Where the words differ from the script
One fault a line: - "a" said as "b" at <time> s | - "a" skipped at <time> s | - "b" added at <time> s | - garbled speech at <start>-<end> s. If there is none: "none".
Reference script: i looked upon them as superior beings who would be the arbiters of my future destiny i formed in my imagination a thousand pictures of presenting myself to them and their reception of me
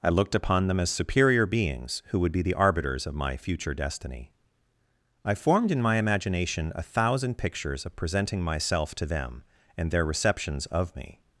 - "reception" said as "receptions" at 10.0 s